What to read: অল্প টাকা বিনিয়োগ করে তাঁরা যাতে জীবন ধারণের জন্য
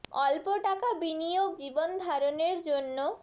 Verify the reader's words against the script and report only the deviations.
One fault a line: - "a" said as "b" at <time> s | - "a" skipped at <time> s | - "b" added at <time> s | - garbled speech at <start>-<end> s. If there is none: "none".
- "করে তাঁরা যাতে" skipped at 1.5 s